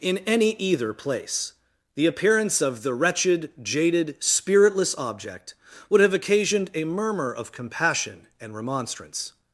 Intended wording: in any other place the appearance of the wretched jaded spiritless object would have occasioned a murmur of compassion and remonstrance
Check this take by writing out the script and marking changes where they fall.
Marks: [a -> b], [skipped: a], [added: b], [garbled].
in any [other -> either] place the appearance of the wretched jaded spiritless object would have occasioned a murmur of compassion and remonstrance